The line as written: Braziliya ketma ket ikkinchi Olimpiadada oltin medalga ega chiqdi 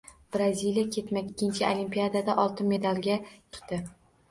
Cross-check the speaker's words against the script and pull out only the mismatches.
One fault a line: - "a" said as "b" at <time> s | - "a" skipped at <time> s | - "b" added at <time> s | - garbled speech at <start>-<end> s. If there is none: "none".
- "ket" skipped at 1.2 s
- "ega" skipped at 3.2 s